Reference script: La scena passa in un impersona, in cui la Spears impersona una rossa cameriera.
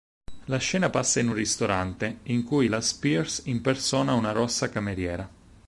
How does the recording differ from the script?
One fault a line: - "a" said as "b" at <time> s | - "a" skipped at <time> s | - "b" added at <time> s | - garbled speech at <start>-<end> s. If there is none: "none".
- "impersona" said as "ristorante" at 1.3 s